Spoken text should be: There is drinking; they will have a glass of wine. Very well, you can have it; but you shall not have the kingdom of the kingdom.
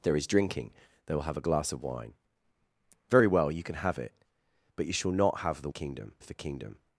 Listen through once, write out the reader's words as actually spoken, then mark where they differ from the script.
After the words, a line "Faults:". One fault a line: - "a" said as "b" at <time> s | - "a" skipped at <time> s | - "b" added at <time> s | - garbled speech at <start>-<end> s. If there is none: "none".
There is drinking; they will have a glass of wine. Very well, you can have it; but you shall not have the kingdom of the kingdom.
Faults:
none